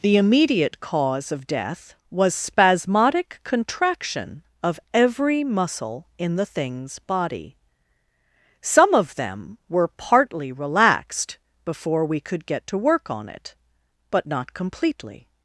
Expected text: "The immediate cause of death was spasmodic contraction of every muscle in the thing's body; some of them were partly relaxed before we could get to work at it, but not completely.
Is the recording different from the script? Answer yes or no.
yes